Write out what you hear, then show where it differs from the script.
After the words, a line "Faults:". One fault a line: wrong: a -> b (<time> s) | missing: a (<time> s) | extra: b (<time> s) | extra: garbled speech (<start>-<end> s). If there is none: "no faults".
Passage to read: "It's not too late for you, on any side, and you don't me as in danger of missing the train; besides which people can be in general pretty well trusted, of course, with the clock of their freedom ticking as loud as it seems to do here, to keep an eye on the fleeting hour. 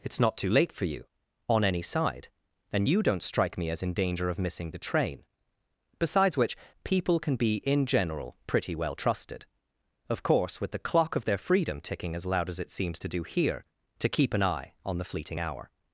"It's not too late for you, on any side, and you don't strike me as in danger of missing the train; besides which people can be in general pretty well trusted, of course, with the clock of their freedom ticking as loud as it seems to do here, to keep an eye on the fleeting hour.
Faults:
extra: strike (3.2 s)